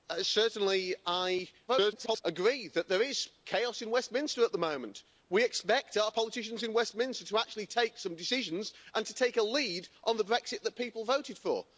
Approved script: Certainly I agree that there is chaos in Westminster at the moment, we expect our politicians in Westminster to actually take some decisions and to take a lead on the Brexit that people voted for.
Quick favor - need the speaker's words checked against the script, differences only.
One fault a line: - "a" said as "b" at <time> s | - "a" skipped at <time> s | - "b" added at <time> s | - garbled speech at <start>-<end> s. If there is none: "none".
- garbled speech at 1.7-2.2 s